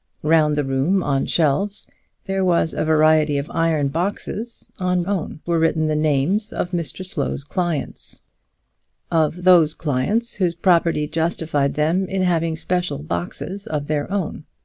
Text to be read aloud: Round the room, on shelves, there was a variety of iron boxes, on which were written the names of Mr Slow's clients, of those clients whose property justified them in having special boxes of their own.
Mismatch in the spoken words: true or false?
true